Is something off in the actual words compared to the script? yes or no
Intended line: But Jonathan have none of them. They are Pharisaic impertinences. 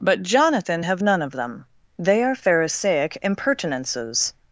no